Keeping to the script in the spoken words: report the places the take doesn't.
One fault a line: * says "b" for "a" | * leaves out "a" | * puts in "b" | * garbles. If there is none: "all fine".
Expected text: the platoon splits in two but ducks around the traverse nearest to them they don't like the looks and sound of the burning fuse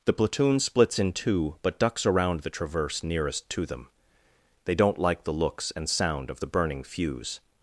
all fine